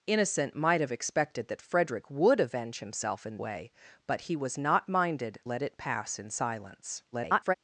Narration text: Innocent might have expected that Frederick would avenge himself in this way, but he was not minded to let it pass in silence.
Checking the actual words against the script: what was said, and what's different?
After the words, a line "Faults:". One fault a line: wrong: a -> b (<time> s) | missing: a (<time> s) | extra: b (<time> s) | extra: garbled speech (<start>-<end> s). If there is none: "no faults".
Innocent might have expected that Frederick would avenge himself in way, but he was not minded let it pass in silence. [garbled]
Faults:
missing: this (3.4 s)
missing: to (5.4 s)
extra: garbled speech (7.1-7.5 s)